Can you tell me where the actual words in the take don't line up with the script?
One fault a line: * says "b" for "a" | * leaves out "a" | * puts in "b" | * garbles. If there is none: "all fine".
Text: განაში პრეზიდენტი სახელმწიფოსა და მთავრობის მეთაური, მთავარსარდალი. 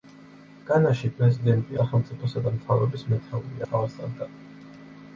all fine